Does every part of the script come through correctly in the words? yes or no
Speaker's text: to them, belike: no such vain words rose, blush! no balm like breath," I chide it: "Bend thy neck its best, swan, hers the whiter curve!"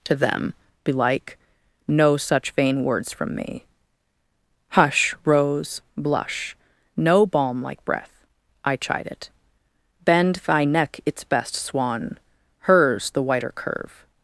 no